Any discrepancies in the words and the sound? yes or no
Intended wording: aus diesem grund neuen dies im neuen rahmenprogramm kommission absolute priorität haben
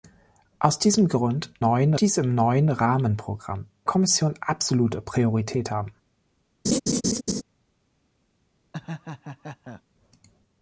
yes